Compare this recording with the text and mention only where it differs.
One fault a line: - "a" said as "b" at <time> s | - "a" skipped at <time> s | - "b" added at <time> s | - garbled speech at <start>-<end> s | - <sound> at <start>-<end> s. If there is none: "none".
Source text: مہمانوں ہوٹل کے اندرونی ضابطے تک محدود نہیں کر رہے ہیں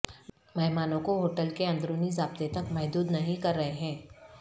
- "کو" added at 1.0 s